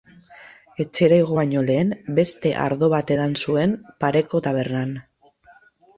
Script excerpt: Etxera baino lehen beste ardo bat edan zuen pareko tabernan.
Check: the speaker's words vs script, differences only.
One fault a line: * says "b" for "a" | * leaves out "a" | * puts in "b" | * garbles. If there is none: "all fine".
* puts in "igo"